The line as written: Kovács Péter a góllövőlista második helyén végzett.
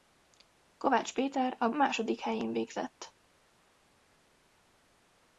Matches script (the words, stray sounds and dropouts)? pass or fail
fail